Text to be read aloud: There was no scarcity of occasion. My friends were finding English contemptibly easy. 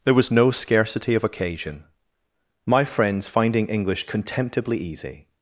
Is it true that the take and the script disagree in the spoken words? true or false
true